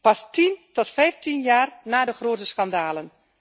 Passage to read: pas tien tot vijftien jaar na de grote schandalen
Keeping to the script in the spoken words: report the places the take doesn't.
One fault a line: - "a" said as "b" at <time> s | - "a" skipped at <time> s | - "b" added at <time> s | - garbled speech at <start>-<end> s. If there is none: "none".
none